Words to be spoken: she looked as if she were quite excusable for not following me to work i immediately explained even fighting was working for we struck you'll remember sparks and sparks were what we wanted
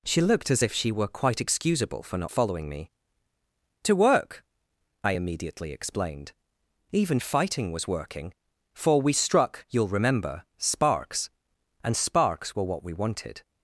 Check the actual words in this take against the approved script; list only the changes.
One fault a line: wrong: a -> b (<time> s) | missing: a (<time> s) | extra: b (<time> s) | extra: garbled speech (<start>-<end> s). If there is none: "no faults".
no faults